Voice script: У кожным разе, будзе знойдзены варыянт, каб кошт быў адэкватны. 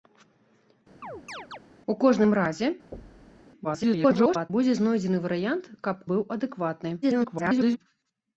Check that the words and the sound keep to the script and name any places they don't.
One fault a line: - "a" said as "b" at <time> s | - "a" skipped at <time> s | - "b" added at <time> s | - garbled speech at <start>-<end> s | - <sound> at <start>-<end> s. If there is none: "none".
- chirp at 1.0-1.6 s
- thud at 2.9-3.4 s
- garbled speech at 3.6-4.5 s
- "кошт" skipped at 6.0 s
- garbled speech at 7.0-7.8 s